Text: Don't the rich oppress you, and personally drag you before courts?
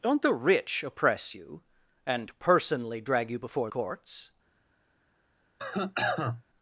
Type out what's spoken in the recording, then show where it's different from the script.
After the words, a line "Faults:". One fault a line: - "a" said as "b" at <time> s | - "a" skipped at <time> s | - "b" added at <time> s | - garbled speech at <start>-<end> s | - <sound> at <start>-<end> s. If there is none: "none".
Don't the rich oppress you, and personally drag you before courts?
Faults:
- cough at 5.6-6.4 s